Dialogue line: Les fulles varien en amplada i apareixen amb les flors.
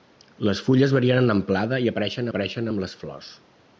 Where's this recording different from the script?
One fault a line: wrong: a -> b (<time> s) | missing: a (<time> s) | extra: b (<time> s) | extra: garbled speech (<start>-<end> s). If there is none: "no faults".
extra: apareixen (2.3 s)